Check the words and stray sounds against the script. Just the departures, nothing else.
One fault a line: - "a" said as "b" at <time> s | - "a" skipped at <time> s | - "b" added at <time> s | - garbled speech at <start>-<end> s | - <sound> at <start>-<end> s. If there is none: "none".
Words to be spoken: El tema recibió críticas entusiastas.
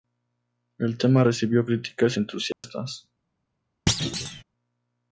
- dropout at 2.5-2.6 s
- thud at 3.9-4.4 s